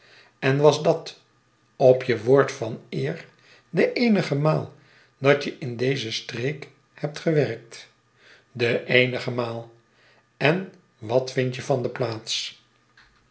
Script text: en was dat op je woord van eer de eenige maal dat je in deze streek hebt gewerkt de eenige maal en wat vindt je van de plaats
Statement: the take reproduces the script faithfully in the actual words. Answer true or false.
true